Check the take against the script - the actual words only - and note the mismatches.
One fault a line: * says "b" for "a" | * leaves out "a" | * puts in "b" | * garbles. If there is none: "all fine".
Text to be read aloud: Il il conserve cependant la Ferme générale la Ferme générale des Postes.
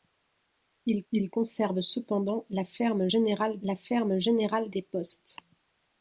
all fine